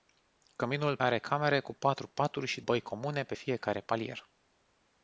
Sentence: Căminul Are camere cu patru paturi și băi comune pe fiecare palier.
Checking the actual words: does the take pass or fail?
pass